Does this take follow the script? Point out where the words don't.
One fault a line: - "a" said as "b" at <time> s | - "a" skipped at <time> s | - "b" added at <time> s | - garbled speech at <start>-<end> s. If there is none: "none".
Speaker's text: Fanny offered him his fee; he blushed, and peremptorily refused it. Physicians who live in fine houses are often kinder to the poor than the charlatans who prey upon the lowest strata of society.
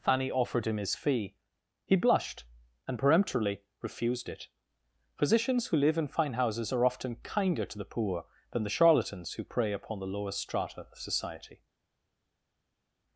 none